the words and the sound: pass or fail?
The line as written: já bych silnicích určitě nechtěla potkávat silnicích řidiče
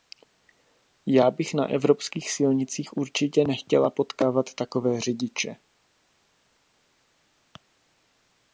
fail